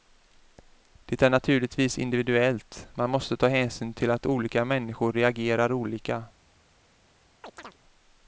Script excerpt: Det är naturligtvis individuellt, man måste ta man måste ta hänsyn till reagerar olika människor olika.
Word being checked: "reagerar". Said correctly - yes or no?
no